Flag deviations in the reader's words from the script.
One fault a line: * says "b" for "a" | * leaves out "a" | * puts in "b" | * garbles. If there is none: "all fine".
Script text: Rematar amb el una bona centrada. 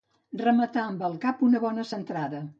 * puts in "cap"